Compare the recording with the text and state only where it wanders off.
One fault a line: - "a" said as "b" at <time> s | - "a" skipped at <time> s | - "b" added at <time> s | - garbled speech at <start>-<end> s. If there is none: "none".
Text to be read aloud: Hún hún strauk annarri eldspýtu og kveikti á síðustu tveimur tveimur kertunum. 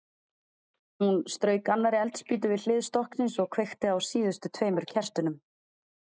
- "hún" skipped at 1.2 s
- "við hlið stokksins" added at 2.5 s
- "tveimur" skipped at 4.9 s